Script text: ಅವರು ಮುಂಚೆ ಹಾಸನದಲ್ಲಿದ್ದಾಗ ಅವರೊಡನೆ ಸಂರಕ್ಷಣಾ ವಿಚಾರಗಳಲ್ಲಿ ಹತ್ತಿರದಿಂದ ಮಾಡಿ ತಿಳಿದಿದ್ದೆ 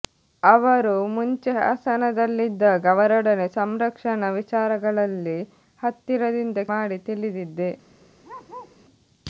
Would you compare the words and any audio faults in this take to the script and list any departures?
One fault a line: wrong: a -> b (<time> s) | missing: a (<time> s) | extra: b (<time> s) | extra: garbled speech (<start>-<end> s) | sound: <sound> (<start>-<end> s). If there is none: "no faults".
sound: bark (8.2-8.8 s)